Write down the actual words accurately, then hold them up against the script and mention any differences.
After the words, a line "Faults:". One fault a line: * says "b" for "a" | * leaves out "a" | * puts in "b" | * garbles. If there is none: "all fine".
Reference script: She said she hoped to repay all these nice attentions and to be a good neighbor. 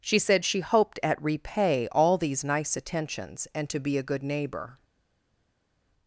She said she hoped at repay all these nice attentions and to be a good neighbor.
Faults:
* says "at" for "to"